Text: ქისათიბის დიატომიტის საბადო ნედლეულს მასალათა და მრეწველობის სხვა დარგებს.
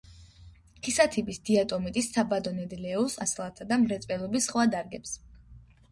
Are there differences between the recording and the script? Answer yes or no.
no